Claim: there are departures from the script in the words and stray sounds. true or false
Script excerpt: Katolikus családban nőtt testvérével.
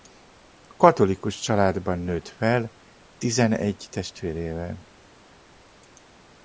true